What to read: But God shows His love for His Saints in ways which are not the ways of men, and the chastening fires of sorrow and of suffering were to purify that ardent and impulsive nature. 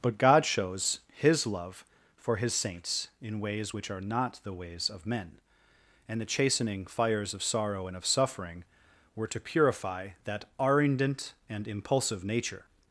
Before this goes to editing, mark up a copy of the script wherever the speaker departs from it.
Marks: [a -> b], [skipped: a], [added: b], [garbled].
But God shows His love for His Saints in ways which are not the ways of men, and the chastening fires of sorrow and of suffering were to purify that ardent and impulsive nature.